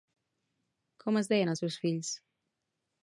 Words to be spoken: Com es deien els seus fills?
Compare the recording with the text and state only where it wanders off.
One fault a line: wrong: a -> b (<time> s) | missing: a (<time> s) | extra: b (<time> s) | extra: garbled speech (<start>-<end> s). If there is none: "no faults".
no faults